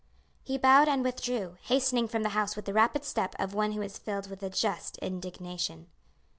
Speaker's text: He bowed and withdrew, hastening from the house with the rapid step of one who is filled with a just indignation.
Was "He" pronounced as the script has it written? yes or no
yes